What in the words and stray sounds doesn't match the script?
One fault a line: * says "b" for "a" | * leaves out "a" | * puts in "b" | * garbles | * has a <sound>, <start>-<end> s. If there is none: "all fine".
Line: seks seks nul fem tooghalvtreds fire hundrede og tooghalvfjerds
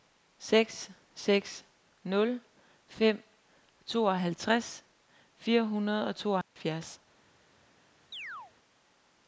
* has a dropout, 6.4-6.6 s
* has a chirp, 8.1-8.5 s